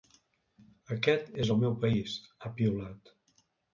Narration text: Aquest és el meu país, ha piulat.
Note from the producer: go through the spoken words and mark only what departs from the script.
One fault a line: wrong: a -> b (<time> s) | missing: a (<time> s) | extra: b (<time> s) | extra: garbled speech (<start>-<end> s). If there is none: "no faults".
no faults